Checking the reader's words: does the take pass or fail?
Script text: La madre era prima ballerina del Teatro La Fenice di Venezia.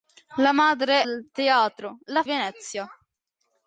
fail